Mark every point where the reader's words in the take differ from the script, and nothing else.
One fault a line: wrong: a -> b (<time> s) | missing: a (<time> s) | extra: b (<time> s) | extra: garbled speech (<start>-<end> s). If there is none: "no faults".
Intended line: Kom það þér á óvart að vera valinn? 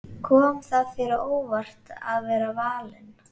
no faults